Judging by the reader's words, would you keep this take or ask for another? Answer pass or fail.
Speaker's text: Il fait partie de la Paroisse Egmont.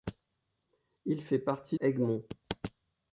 fail